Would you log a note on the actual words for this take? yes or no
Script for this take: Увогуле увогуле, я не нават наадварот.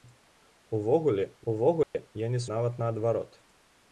no